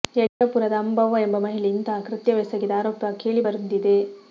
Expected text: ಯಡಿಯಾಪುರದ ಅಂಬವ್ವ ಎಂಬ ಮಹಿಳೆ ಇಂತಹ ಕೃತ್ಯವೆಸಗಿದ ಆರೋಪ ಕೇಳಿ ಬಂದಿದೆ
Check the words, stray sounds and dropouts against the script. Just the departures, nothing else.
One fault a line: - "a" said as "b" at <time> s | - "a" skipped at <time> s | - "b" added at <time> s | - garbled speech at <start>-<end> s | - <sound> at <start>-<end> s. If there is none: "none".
- dropout at 0.3-0.4 s